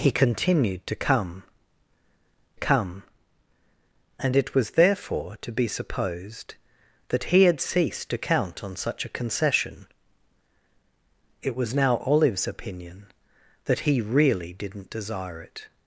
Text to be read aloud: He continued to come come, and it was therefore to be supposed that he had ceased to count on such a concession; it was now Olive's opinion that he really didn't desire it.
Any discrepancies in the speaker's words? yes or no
no